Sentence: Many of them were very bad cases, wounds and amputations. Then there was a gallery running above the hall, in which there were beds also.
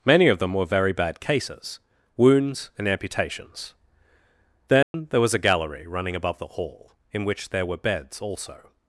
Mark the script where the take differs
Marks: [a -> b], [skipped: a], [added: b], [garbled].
Many of them were very bad cases, wounds and amputations. Then there was a gallery running above the hall, in which there were beds also.